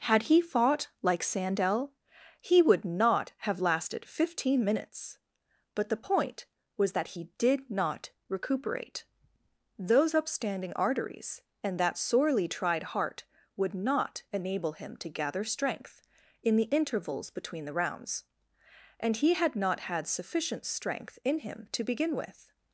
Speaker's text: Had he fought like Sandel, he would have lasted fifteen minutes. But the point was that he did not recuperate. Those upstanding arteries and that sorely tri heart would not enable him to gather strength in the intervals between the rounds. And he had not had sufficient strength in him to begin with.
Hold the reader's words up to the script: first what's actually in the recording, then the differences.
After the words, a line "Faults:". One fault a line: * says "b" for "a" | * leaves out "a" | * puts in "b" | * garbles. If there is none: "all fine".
Had he fought like Sandel, he would not have lasted fifteen minutes. But the point was that he did not recuperate. Those upstanding arteries and that sorely tried heart would not enable him to gather strength in the intervals between the rounds. And he had not had sufficient strength in him to begin with.
Faults:
* puts in "not"
* says "tried" for "tri"